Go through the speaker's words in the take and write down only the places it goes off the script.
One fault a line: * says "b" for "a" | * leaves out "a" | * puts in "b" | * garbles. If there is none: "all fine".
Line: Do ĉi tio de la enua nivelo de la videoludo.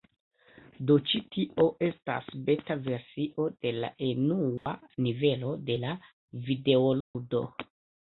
* puts in "estas beta versio"